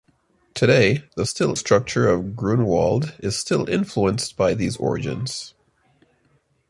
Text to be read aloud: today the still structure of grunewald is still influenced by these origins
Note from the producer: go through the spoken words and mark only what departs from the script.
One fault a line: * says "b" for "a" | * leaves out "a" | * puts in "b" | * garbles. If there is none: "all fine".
all fine